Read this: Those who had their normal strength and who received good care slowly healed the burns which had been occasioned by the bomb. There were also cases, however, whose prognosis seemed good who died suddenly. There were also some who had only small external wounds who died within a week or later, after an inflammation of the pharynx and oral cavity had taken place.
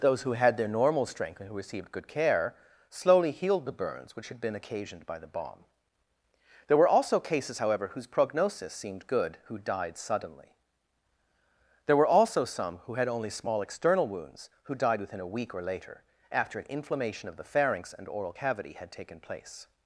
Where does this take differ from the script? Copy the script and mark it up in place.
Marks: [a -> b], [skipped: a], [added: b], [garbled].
Those who had their normal strength and who received good care slowly healed the burns which had been occasioned by the bomb. There were also cases, however, whose prognosis seemed good who died suddenly. There were also some who had only small external wounds who died within a week or later, after an inflammation of the pharynx and oral cavity had taken place.